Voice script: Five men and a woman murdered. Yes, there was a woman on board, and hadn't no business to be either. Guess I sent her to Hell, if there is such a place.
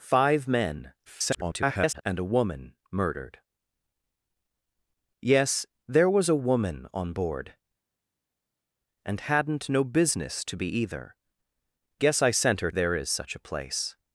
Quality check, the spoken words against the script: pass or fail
fail